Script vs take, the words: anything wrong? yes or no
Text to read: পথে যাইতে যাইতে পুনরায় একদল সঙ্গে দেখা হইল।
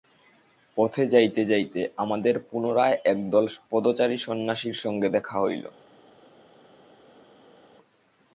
yes